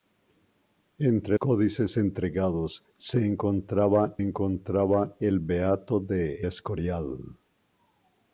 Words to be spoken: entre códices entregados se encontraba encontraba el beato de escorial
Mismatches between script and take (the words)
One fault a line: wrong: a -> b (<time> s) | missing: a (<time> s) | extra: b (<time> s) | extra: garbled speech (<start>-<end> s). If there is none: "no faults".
no faults